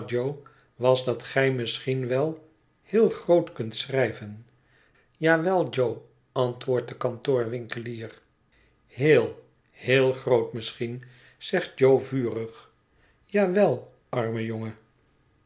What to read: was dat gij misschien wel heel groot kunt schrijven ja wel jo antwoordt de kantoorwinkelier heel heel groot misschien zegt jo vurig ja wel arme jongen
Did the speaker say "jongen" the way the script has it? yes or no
yes